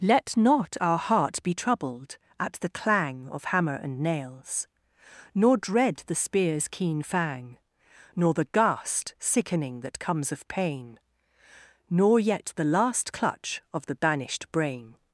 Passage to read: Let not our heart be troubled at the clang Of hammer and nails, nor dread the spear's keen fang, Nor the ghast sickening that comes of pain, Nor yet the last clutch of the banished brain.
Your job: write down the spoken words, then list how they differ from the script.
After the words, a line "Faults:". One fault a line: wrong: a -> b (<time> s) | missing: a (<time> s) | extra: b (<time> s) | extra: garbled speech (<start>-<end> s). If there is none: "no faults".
Let not our heart be troubled at the clang Of hammer and nails, nor dread the spear's keen fang, Nor the ghast sickening that comes of pain, Nor yet the last clutch of the banished brain.
Faults:
no faults